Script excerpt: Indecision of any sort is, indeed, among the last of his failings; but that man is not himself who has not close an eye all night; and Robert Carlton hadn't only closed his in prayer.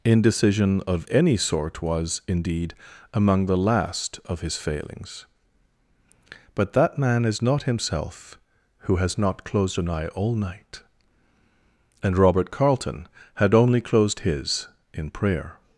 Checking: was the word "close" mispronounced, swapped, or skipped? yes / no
yes